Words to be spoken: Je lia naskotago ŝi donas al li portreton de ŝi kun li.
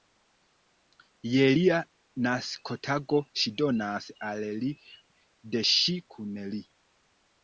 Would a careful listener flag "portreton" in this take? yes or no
yes